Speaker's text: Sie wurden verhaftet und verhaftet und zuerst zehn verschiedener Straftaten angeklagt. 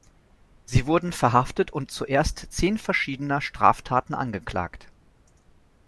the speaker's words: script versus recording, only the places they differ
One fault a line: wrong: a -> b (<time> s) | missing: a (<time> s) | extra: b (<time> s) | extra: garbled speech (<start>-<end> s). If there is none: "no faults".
missing: verhaftet und (1.9 s)